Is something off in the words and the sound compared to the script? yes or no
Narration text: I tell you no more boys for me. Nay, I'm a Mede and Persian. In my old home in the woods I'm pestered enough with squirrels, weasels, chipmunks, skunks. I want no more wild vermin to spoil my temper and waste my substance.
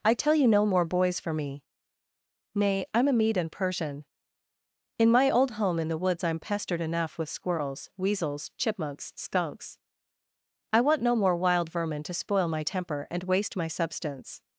no